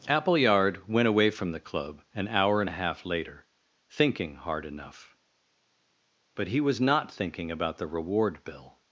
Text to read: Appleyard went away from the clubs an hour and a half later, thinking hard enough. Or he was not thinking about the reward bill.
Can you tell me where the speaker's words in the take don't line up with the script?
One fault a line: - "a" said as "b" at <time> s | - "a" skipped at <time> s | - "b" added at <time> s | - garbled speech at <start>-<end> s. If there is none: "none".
- "clubs" said as "club" at 1.6 s
- "Or" said as "But" at 6.3 s